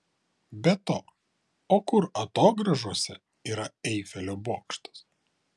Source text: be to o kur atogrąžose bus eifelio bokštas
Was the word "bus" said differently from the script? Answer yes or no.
yes